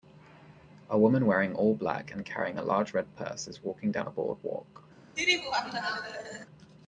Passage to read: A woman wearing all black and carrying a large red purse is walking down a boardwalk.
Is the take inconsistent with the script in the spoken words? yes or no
no